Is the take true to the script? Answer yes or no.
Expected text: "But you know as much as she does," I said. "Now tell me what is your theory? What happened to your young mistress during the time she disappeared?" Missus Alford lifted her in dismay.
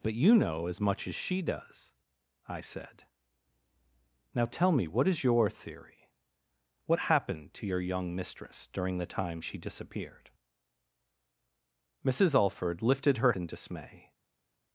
yes